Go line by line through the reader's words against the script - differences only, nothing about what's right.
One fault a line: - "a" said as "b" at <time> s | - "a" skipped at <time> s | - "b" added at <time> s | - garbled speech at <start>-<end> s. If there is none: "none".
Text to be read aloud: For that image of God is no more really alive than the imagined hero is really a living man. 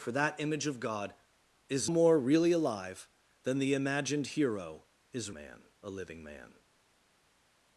- "no" skipped at 1.9 s
- "really" said as "man" at 5.3 s